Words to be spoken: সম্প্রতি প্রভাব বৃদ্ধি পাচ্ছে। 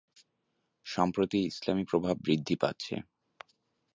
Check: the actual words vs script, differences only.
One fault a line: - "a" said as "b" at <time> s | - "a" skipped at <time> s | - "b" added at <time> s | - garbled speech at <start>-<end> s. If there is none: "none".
- "ইসলামি" added at 1.4 s